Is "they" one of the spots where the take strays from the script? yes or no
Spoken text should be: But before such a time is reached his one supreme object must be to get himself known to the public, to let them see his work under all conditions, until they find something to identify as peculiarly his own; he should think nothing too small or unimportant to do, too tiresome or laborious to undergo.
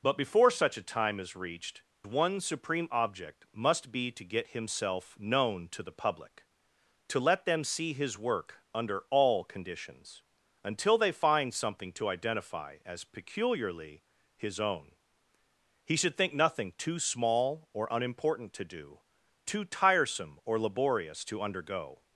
no